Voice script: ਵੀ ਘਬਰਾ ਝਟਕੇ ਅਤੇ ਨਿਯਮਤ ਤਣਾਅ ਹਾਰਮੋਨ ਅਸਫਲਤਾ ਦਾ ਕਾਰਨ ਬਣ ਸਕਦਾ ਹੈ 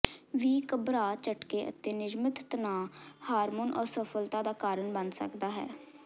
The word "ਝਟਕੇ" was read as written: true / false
true